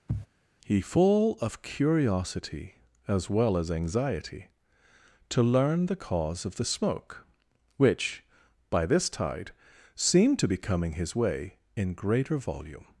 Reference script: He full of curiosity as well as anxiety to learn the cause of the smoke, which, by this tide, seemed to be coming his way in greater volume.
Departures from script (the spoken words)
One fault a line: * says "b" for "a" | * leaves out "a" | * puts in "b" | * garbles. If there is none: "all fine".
all fine